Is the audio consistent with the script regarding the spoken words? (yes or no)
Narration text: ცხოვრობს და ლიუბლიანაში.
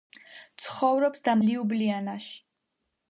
yes